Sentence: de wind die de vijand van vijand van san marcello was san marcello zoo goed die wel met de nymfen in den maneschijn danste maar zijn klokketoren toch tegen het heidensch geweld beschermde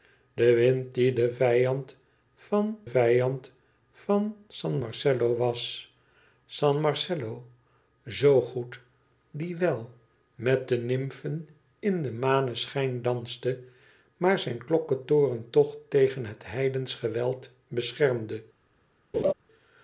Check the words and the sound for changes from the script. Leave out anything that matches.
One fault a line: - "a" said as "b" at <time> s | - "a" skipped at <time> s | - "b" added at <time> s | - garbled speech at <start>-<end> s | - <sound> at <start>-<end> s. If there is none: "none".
- laugh at 19.1-19.3 s